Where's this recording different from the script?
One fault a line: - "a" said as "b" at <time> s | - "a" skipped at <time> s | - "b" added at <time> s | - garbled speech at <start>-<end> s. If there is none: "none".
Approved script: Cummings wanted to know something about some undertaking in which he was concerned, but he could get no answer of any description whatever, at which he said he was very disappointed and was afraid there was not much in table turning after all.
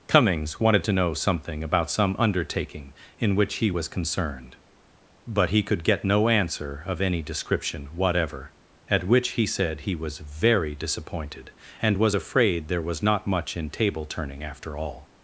none